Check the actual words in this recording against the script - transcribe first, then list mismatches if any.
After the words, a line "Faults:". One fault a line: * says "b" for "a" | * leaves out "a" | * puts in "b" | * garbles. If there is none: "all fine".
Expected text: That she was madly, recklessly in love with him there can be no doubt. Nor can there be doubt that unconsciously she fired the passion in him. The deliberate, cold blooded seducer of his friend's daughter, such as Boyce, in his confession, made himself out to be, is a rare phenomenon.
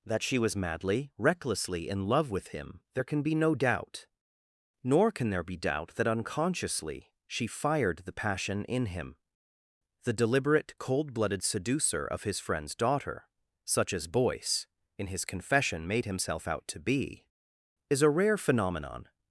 That she was madly, recklessly in love with him there can be no doubt. Nor can there be doubt that unconsciously she fired the passion in him. The deliberate, cold blooded seducer of his friend's daughter, such as Boyce, in his confession, made himself out to be, is a rare phenomenon.
Faults:
all fine